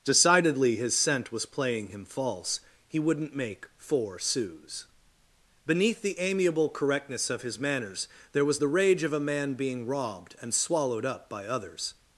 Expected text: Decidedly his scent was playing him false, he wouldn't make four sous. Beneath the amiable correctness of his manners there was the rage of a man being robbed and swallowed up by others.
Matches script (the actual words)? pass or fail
pass